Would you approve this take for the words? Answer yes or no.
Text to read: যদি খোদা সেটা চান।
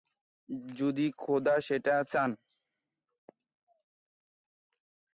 yes